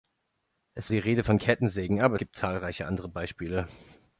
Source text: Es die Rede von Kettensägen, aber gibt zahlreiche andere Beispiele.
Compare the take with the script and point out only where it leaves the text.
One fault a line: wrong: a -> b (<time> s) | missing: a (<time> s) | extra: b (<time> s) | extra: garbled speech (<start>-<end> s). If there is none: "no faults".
no faults